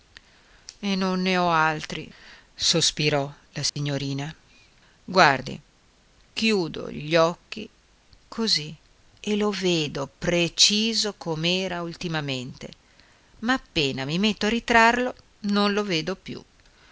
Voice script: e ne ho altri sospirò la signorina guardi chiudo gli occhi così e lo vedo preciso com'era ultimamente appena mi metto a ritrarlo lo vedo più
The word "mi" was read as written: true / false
true